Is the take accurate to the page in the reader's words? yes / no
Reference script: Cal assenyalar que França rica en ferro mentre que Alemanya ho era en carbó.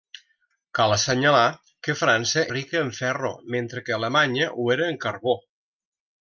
yes